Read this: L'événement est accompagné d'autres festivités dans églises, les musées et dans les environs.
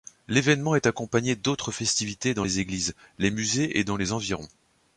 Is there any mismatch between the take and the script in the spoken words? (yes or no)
yes